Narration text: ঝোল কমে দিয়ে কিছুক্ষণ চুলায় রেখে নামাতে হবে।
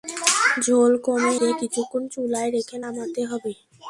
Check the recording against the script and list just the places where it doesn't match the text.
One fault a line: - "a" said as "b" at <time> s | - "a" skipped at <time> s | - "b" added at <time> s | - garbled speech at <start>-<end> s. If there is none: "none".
none